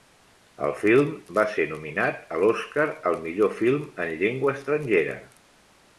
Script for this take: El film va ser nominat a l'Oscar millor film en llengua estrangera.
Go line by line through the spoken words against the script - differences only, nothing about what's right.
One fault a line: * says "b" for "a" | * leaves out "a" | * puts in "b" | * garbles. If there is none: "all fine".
* puts in "al"